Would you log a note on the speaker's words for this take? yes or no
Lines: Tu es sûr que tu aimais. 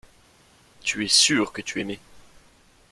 no